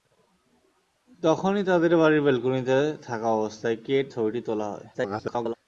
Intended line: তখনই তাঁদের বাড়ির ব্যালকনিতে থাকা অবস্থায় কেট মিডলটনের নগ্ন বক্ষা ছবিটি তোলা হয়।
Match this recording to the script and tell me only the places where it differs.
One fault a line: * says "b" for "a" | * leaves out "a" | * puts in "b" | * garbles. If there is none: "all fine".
* leaves out "মিডলটনের নগ্ন বক্ষা"
* garbles